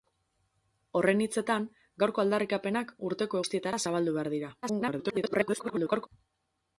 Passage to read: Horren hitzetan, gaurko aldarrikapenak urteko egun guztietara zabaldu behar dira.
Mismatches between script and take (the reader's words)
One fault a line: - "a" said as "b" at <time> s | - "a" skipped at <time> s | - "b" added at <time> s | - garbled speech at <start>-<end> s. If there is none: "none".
- "egun" skipped at 3.4 s
- garbled speech at 4.6-6.1 s